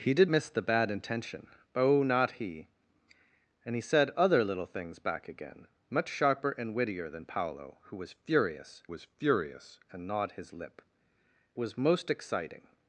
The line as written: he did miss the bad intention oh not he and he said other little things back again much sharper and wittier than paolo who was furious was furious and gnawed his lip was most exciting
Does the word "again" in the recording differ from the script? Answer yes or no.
no